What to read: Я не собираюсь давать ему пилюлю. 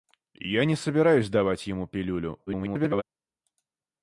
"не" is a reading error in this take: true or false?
false